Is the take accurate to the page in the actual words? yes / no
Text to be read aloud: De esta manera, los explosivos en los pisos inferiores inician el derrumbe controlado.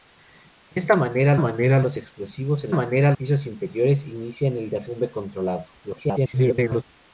no